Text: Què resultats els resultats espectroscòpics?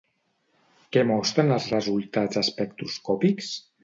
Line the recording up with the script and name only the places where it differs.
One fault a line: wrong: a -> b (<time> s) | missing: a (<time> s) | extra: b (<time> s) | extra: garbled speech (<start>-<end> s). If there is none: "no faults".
wrong: resultats -> mostren (1.1 s)